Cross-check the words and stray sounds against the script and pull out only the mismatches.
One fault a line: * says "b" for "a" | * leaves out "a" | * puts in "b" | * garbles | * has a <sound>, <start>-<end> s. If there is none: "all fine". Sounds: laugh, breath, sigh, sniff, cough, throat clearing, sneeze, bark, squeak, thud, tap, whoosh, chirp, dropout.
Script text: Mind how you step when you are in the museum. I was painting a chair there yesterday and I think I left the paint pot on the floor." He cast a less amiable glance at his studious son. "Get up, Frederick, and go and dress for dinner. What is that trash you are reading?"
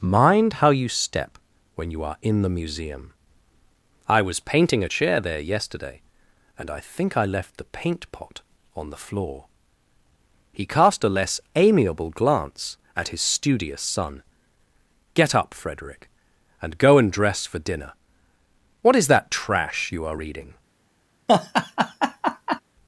* has a laugh, 21.3-22.6 s